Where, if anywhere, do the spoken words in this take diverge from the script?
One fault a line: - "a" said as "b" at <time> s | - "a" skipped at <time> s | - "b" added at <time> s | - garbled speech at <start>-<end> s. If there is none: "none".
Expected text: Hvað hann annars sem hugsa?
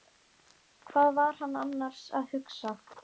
- "var" added at 1.2 s
- "sem" said as "að" at 2.2 s